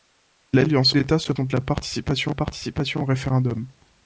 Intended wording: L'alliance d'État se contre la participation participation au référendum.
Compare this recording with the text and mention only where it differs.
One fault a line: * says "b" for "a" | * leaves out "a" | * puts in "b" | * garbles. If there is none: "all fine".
all fine